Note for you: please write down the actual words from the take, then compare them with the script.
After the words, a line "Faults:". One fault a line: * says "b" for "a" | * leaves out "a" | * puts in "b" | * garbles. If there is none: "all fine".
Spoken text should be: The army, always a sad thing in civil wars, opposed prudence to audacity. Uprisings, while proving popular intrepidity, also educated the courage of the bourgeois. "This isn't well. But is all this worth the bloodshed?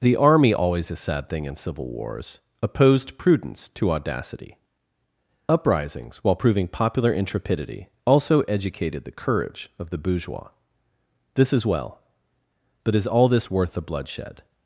The army, always a sad thing in civil wars, opposed prudence to audacity. Uprisings, while proving popular intrepidity, also educated the courage of the bourgeois. "This is well. But is all this worth the bloodshed?
Faults:
* says "is" for "isn't"